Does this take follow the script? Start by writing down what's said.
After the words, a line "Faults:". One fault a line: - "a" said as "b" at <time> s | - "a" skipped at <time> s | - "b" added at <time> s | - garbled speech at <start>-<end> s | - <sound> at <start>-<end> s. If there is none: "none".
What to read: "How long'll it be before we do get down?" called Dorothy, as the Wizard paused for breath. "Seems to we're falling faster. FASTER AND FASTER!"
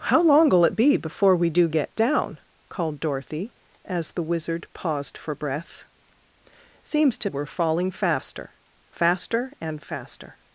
"How long'll it be before we do get down?" called Dorothy, as the Wizard paused for breath. "Seems to we're falling faster. FASTER AND FASTER!"
Faults:
none